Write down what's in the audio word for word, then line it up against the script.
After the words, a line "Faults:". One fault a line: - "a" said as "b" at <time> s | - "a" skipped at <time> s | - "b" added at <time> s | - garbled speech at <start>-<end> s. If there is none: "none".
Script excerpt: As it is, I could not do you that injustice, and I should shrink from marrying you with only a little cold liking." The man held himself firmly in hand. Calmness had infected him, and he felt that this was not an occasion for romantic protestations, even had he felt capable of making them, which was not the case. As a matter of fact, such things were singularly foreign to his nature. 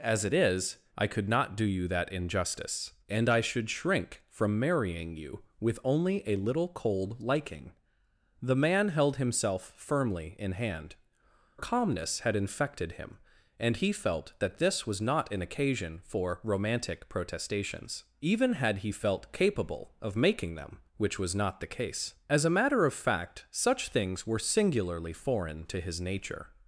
As it is, I could not do you that injustice, and I should shrink from marrying you with only a little cold liking." The man held himself firmly in hand. Calmness had infected him, and he felt that this was not an occasion for romantic protestations, even had he felt capable of making them, which was not the case. As a matter of fact, such things were singularly foreign to his nature.
Faults:
none